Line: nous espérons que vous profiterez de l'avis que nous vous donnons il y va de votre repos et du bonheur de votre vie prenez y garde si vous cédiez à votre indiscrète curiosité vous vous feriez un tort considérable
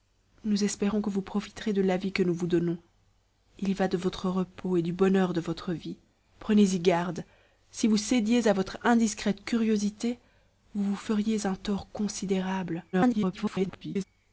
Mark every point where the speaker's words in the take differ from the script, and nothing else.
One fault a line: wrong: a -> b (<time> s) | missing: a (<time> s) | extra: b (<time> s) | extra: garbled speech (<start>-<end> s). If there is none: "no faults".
extra: garbled speech (12.9-14.0 s)